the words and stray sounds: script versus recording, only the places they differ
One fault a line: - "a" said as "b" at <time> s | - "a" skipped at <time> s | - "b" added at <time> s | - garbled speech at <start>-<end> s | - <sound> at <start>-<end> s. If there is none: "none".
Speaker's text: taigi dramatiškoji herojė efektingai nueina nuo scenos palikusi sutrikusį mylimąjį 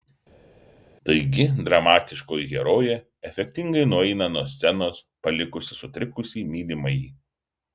none